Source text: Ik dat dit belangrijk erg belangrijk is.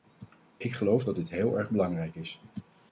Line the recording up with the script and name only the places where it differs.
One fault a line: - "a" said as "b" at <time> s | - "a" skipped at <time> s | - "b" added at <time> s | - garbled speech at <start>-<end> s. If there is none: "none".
- "geloof" added at 0.7 s
- "belangrijk" said as "heel" at 1.3 s